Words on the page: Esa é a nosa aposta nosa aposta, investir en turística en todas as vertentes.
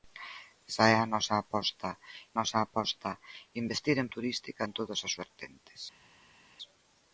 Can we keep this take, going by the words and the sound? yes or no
yes